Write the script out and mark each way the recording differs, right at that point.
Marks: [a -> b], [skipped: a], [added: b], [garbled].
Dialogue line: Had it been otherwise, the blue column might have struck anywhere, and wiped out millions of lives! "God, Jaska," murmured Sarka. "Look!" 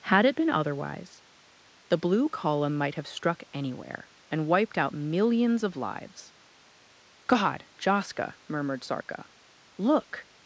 Had it been otherwise, the blue column might have struck anywhere, and wiped out millions of lives! "God, Jaska," murmured Sarka. "Look!"